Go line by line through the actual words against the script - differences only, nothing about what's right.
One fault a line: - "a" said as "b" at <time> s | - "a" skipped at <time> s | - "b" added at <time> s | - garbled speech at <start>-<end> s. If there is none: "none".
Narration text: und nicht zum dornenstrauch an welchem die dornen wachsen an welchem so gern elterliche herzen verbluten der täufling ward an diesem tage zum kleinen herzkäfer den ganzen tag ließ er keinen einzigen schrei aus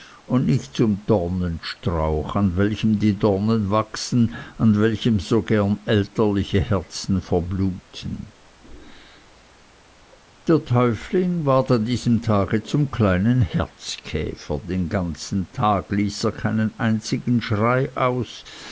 none